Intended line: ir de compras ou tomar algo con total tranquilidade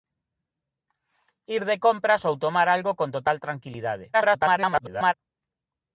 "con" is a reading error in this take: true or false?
false